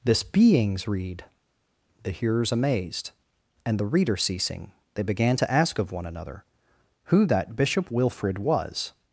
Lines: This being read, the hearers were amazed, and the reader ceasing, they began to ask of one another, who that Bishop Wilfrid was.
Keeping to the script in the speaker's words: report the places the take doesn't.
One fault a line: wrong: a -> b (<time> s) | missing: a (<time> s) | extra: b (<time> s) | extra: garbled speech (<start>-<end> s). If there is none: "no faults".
wrong: being -> beings (0.2 s)
missing: were (2.5 s)